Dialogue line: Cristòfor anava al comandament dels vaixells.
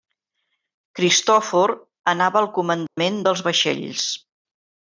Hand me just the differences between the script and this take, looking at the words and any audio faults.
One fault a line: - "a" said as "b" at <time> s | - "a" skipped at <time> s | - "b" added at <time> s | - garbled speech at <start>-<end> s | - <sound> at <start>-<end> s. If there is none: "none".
- dropout at 2.9-3.0 s